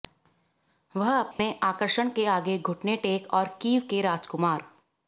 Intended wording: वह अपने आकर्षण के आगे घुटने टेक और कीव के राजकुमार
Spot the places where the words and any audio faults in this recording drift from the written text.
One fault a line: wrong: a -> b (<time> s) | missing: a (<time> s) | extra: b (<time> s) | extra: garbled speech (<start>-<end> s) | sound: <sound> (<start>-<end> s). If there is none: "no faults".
sound: dropout (1.3-1.4 s)